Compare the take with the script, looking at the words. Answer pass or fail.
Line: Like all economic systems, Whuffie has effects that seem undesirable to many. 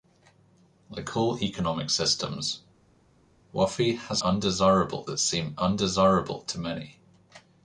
fail